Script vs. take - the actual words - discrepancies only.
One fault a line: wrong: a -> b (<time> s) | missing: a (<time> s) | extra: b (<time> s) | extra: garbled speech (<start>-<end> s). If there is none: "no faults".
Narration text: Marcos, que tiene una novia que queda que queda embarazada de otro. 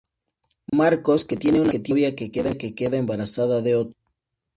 missing: que queda (3.0 s)